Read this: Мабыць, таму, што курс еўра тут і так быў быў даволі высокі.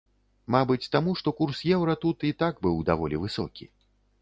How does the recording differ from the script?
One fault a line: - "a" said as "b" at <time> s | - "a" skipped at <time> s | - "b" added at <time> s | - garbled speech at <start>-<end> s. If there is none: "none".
- "быў" skipped at 2.8 s